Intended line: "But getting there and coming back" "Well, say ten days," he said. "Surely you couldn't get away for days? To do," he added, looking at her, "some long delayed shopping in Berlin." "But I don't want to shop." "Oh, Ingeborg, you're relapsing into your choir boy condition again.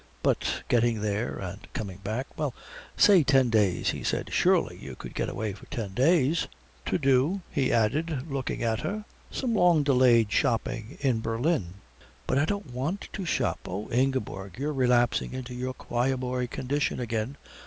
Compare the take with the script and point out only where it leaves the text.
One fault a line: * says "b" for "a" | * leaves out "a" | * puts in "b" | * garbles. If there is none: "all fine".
* says "could" for "couldn't"
* puts in "ten"